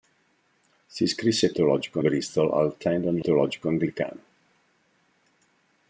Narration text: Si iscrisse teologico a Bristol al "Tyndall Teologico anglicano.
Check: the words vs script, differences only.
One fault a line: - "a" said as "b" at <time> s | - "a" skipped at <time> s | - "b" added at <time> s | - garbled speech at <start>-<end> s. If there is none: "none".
none